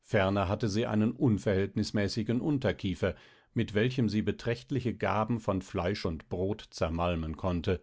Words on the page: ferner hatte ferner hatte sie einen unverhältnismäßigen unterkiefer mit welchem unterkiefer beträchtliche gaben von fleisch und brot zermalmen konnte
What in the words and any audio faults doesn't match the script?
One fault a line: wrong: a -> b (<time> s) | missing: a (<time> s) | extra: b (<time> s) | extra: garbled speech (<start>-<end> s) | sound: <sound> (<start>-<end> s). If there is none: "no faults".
missing: ferner hatte (0.7 s)
wrong: unterkiefer -> sie (4.1 s)